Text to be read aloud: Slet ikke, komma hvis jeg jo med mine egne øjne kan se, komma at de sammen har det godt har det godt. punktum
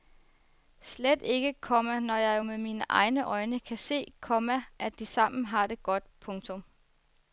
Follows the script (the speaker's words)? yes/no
no